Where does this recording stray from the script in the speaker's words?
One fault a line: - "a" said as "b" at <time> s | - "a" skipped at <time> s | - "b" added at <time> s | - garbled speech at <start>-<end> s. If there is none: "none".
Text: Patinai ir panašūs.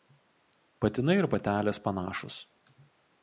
- "patelės" added at 1.3 s